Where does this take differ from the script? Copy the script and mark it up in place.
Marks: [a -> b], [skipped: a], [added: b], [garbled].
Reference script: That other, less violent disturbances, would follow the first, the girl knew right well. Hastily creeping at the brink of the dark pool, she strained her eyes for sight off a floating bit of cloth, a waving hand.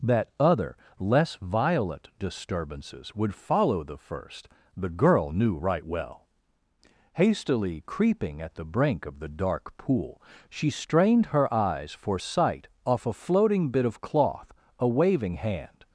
That other, less violent disturbances, would follow the first, the girl knew right well. Hastily creeping at the brink of the dark pool, she strained her eyes for sight off a floating bit of cloth, a waving hand.